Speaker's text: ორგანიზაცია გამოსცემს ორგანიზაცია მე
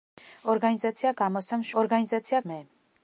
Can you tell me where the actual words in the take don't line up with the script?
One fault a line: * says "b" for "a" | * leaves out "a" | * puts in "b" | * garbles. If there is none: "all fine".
all fine